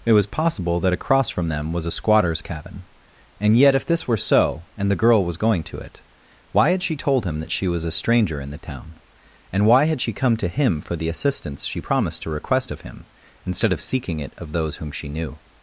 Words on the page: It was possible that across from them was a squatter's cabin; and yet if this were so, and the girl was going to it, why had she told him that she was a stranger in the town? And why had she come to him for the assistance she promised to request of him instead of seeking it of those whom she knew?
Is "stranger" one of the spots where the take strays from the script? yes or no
no